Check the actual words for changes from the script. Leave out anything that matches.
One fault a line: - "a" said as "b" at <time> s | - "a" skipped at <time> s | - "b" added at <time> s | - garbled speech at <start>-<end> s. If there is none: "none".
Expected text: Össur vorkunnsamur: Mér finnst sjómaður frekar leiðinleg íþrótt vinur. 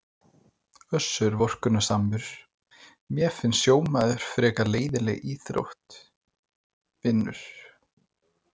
none